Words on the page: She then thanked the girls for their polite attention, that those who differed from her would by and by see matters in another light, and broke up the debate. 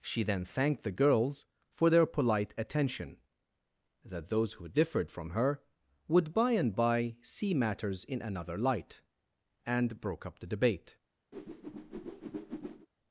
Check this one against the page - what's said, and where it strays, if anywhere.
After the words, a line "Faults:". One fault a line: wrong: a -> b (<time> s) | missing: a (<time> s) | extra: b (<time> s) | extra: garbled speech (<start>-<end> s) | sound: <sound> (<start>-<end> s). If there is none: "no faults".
She then thanked the girls for their polite attention, that those who differed from her would by and by see matters in another light, and broke up the debate.
Faults:
sound: whoosh (11.3-12.9 s)